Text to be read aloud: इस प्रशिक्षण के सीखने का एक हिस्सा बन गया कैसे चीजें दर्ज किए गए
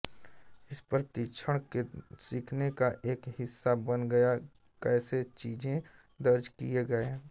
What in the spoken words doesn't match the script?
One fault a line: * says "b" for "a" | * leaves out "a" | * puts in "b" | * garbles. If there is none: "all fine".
all fine